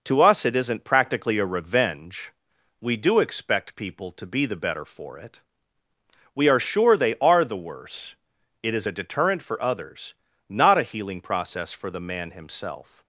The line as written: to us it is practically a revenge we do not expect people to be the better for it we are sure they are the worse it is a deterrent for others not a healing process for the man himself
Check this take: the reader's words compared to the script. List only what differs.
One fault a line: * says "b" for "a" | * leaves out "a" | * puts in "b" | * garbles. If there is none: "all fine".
* says "isn't" for "is"
* leaves out "not"